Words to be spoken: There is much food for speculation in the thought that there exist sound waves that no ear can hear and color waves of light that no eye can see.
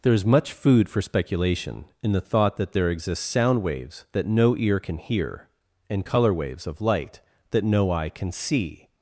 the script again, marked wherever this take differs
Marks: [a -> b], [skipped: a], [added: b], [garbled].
There is much food for speculation in the thought that there exist sound waves that no ear can hear and color waves of light that no eye can see.